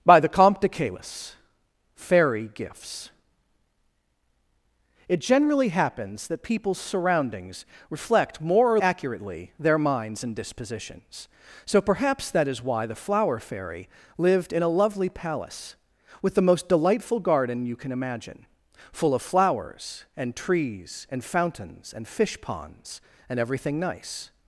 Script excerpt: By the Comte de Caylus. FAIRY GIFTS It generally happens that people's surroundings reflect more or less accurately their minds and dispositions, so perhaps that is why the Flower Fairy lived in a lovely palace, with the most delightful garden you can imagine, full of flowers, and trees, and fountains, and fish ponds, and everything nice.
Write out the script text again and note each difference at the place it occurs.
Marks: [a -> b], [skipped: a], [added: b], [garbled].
By the Comte de Caylus. FAIRY GIFTS It generally happens that people's surroundings reflect more or [skipped: less] accurately their minds and dispositions, so perhaps that is why the Flower Fairy lived in a lovely palace, with the most delightful garden you can imagine, full of flowers, and trees, and fountains, and fish ponds, and everything nice.